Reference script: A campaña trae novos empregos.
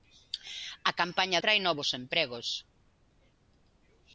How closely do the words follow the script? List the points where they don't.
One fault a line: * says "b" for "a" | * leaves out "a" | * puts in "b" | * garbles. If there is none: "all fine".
all fine